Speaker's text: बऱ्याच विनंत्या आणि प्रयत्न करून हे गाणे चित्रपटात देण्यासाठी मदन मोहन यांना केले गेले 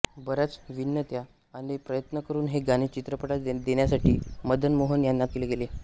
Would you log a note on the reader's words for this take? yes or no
no